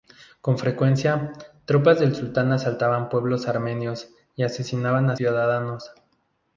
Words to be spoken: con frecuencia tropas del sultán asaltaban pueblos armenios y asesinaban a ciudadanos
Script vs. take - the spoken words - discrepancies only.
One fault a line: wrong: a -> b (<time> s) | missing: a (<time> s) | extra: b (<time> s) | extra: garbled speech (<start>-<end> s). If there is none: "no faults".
no faults